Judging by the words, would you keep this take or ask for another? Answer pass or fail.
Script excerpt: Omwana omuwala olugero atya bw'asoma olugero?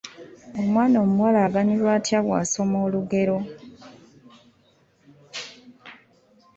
fail